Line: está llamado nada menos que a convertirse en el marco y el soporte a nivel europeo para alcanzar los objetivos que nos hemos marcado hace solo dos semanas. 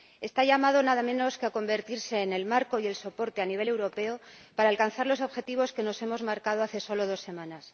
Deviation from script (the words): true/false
false